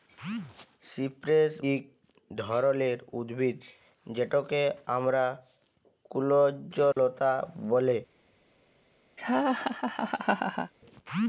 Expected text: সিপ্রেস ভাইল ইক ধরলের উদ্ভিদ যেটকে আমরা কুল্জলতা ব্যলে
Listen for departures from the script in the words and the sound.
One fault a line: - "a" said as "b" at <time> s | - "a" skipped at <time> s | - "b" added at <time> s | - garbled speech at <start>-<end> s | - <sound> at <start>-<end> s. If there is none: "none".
- "ভাইল" skipped at 1.5 s
- dropout at 6.9-7.0 s
- laugh at 9.2-10.7 s